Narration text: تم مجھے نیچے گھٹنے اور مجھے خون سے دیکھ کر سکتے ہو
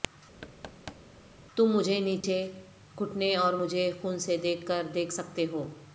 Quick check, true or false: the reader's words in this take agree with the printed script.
false